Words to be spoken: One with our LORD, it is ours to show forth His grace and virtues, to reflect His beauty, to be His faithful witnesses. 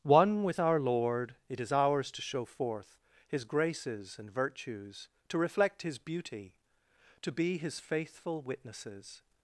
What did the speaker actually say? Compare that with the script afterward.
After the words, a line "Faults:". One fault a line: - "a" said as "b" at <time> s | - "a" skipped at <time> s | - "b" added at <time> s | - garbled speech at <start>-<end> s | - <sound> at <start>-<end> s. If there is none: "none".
One with our LORD, it is ours to show forth His graces and virtues, to reflect His beauty, to be His faithful witnesses.
Faults:
- "grace" said as "graces" at 3.4 s